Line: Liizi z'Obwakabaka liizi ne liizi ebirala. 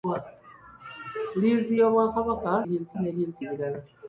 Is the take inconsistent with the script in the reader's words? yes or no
no